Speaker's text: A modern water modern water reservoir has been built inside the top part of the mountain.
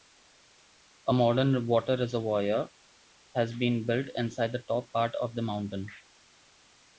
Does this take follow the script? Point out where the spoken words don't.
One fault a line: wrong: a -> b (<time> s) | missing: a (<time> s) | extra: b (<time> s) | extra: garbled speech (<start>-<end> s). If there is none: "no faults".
missing: modern water (2.0 s)